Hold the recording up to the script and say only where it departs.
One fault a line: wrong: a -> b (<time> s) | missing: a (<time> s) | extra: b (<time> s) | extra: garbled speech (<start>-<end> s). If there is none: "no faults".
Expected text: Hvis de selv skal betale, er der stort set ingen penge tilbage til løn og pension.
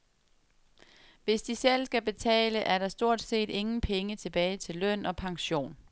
no faults